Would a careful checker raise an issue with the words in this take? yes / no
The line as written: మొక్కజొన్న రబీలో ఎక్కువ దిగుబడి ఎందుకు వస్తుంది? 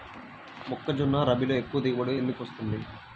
no